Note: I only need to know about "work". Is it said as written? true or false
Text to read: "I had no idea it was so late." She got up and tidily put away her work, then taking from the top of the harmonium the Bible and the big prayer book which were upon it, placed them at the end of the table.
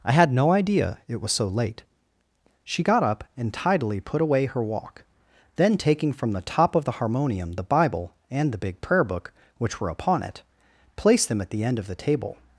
false